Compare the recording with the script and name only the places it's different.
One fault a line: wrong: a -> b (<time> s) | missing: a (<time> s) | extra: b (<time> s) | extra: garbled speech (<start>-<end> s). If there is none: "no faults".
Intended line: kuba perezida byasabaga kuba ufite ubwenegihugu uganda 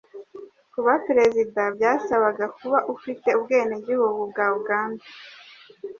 extra: bwa (4.3 s)